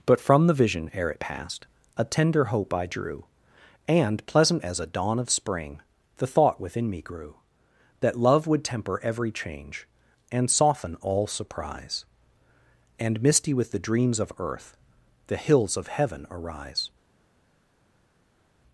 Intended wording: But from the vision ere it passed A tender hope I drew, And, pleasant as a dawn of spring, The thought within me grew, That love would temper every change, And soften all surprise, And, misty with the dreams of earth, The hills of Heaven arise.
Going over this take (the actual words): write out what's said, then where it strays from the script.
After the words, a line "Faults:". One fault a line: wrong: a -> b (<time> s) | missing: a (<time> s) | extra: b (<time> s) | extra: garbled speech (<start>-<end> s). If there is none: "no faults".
But from the vision ere it passed A tender hope I drew, And, pleasant as a dawn of spring, The thought within me grew, That love would temper every change, And soften all surprise, And, misty with the dreams of earth, The hills of Heaven arise.
Faults:
no faults